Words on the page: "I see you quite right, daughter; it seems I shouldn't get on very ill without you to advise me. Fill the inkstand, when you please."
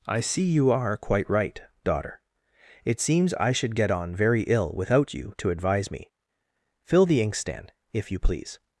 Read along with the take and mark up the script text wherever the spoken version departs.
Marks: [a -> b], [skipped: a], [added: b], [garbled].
"I see you [added: are] quite right, daughter; it seems I [shouldn't -> should] get on very ill without you to advise me. Fill the inkstand, [when -> if] you please."